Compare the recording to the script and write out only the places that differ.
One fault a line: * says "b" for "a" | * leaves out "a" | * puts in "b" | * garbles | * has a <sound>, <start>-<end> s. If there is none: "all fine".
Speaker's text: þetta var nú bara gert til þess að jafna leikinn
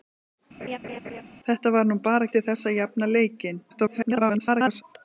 * has a laugh, 0.6-1.2 s
* leaves out "gert"
* garbles